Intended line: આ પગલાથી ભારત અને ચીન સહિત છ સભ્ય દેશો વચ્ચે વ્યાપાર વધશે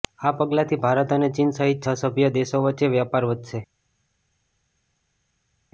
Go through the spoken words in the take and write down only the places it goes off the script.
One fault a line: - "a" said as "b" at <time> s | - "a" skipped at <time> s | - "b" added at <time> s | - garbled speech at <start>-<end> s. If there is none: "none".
none